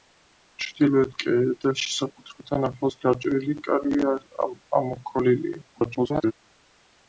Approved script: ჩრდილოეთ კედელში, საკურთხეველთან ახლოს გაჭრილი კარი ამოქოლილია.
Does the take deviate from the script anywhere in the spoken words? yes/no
yes